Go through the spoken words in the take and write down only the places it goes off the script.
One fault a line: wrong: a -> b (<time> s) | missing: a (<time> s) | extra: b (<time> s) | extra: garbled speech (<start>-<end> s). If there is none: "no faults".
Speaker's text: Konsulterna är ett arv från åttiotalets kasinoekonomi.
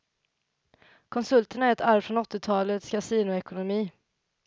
no faults